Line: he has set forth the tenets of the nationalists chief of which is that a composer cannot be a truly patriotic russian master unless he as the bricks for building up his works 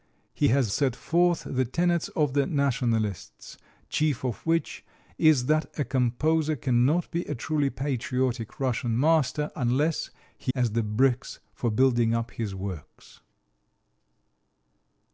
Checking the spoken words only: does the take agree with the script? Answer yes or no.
yes